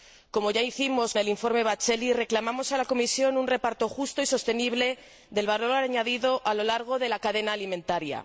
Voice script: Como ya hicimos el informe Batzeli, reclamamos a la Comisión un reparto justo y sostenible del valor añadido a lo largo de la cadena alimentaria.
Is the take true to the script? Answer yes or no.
yes